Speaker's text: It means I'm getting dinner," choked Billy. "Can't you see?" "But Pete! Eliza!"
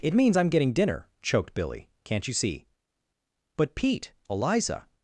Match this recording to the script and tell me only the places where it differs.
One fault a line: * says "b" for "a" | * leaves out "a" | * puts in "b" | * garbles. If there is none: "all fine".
all fine